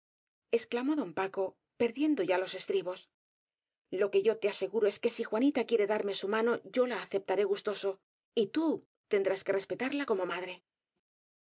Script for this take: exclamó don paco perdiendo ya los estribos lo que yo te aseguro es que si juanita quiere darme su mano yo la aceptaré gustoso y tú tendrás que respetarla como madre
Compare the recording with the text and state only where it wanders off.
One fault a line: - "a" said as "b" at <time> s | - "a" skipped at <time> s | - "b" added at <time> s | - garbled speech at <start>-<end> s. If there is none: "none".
none